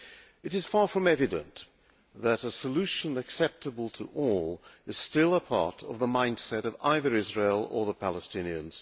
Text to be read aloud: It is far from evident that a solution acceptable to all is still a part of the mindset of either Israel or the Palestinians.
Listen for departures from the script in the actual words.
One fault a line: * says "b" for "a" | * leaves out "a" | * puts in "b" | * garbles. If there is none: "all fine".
all fine